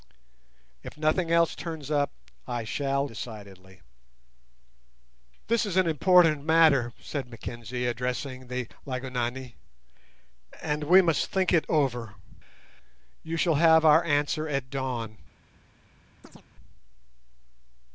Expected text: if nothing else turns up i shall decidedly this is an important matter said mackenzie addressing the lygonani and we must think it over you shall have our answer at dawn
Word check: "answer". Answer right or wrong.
right